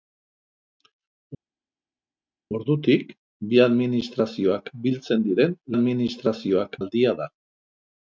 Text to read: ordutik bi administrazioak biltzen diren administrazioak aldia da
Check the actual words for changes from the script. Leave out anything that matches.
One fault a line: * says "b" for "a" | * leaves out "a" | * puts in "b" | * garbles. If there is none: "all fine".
all fine